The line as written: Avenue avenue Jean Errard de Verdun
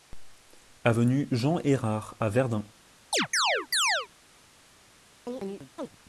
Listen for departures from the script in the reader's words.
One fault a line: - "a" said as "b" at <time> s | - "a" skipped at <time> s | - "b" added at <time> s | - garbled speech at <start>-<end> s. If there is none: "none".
- "avenue" skipped at 1.3 s
- "de" said as "à" at 2.2 s